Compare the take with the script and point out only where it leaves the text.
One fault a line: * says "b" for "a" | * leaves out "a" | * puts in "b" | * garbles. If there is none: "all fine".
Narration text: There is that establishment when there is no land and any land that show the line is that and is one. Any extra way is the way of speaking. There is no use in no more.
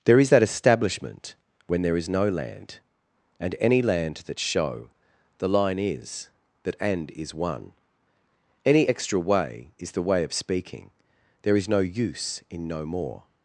all fine